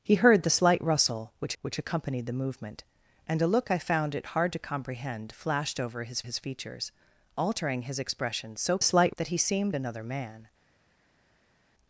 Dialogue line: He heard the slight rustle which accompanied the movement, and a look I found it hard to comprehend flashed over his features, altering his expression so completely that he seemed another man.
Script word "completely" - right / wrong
wrong